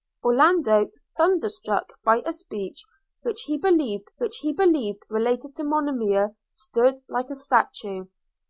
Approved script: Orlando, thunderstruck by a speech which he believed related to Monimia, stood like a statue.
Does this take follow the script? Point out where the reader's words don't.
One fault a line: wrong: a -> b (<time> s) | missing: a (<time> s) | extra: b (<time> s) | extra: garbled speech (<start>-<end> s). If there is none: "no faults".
extra: which he believed (4.2 s)